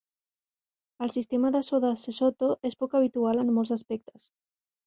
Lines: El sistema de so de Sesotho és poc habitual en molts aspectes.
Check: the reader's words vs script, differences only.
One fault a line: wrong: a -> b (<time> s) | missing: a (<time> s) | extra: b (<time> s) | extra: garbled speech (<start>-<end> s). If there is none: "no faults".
no faults